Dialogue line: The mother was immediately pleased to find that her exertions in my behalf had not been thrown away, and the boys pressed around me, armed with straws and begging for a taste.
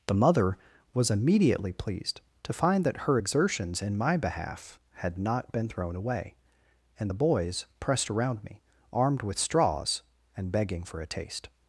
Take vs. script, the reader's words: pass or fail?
pass